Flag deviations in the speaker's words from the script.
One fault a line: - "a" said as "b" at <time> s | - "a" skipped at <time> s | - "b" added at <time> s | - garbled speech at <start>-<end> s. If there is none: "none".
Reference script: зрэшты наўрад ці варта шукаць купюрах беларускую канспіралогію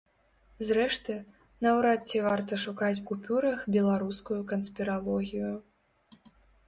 none